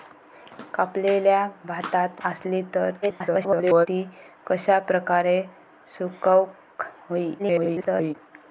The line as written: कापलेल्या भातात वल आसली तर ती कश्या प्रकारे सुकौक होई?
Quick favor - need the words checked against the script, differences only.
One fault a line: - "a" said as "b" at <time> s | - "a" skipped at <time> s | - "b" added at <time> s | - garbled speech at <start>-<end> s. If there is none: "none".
- "वल" skipped at 2.2 s
- garbled speech at 3.0-3.9 s
- garbled speech at 7.4-8.1 s